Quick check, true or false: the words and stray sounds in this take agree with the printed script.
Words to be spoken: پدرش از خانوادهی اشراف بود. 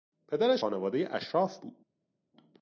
false